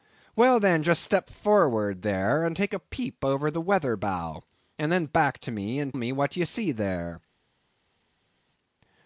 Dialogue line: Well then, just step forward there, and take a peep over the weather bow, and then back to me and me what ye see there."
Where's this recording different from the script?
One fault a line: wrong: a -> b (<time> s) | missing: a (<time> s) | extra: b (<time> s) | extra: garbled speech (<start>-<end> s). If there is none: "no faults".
no faults